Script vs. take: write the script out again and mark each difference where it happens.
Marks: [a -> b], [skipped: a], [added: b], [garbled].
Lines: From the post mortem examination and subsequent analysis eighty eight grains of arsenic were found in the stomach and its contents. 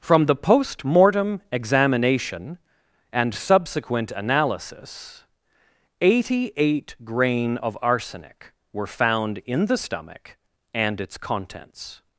From the post mortem examination and subsequent analysis eighty eight [grains -> grain] of arsenic were found in the stomach and its contents.